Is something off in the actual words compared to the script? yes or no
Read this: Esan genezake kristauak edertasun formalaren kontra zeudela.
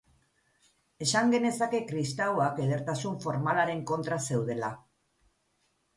no